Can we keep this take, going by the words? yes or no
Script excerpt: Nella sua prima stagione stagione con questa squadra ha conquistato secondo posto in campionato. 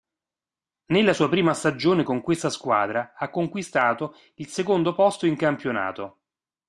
no